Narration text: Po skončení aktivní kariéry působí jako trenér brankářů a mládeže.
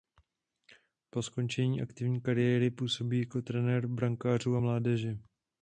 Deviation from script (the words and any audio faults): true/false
false